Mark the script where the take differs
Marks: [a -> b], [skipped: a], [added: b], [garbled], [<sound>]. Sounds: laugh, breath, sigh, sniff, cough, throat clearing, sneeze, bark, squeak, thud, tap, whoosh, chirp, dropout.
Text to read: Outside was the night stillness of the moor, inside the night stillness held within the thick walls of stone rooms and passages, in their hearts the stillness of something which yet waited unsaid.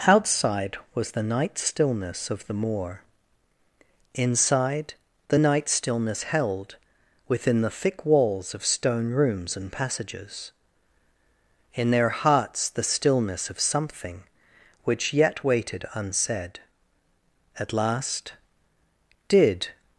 Outside was the night stillness of the moor, inside the night stillness held within the thick walls of stone rooms and passages, in their hearts the stillness of something which yet waited unsaid. [added: At last Did]